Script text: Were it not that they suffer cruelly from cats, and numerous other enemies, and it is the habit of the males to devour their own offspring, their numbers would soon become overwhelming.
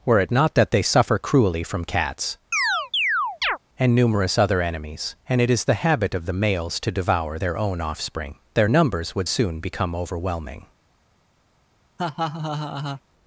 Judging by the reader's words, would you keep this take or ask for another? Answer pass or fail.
pass